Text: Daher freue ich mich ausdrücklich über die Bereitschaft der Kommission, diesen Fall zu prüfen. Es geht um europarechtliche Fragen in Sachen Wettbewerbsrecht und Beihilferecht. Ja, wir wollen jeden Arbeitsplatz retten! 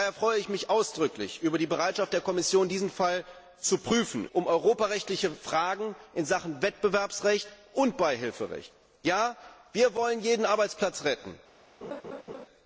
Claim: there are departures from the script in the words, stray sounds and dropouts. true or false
true